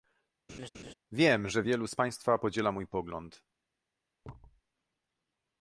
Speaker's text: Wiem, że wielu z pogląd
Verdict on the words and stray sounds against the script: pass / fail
fail